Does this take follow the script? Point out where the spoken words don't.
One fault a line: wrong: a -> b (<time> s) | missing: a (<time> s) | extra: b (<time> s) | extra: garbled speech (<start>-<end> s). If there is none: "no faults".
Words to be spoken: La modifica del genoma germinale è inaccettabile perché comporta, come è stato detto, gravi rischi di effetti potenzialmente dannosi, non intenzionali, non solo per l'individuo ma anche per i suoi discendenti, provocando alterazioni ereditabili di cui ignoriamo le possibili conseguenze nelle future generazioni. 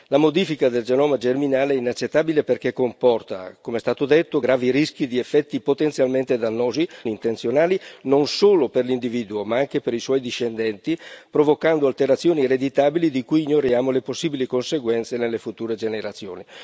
missing: non (6.9 s)